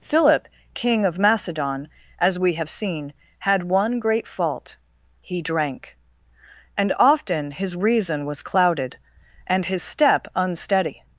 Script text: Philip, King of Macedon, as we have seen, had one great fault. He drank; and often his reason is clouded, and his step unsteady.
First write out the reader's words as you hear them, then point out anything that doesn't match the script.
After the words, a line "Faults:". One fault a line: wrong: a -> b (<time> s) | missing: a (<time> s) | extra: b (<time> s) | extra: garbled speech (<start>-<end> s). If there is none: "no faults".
Philip, King of Macedon, as we have seen, had one great fault. He drank; and often his reason was clouded, and his step unsteady.
Faults:
wrong: is -> was (8.2 s)